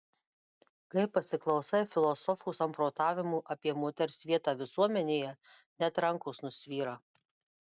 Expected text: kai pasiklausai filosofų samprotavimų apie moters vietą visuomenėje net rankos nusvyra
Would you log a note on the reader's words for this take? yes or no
no